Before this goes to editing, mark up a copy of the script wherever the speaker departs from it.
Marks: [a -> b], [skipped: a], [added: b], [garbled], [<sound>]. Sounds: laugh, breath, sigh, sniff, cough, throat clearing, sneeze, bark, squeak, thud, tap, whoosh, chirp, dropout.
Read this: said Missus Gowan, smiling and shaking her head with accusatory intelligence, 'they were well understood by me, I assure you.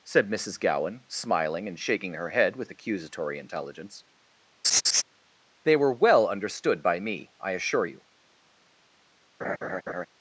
said Missus Gowan, smiling and shaking her head with accusatory intelligence, [laugh] 'they were well understood by me, I assure you. [laugh]